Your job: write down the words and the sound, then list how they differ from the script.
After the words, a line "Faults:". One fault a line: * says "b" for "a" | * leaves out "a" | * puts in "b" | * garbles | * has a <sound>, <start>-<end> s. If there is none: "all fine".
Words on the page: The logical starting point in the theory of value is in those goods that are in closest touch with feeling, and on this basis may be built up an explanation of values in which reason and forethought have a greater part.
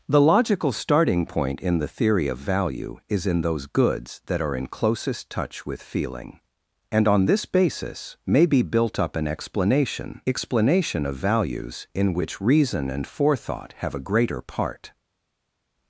The logical starting point in the theory of value is in those goods that are in closest touch with feeling, and on this basis may be built up an explanation explanation of values in which reason and forethought have a greater part.
Faults:
* puts in "explanation"